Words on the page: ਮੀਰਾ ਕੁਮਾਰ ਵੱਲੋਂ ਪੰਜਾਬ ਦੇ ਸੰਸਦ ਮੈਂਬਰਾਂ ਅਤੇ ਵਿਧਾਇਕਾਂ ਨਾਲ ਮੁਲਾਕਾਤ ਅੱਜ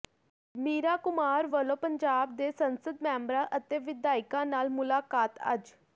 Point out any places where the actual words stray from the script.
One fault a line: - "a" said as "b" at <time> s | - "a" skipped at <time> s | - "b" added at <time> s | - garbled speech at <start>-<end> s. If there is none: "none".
none